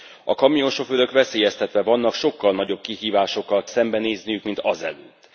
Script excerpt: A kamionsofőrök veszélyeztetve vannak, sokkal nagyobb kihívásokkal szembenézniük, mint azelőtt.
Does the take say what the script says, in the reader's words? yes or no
yes